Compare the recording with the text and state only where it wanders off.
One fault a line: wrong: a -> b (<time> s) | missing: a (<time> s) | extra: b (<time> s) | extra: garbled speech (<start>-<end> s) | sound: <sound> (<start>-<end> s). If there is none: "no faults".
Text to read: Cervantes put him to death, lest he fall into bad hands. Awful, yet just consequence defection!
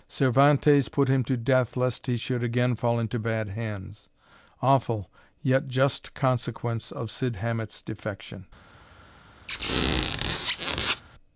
extra: should again (2.1 s)
extra: of Cid Hamet's (6.9 s)
sound: squeak (9.5-11.0 s)